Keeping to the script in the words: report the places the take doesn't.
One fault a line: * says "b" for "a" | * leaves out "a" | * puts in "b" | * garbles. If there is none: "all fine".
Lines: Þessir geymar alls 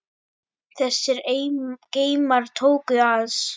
* puts in "tóku"